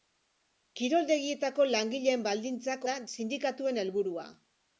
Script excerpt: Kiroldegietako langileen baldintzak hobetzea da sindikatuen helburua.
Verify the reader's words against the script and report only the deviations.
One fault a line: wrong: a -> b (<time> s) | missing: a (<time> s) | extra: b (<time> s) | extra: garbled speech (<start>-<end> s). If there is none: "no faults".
missing: hobetzea (2.9 s)